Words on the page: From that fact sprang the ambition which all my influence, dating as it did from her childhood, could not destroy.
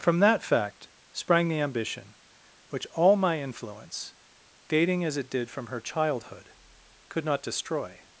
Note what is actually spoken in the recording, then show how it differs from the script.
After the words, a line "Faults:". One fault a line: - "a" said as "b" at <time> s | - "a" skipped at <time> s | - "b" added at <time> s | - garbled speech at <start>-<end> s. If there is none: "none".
From that fact sprang the ambition which all my influence, dating as it did from her childhood, could not destroy.
Faults:
none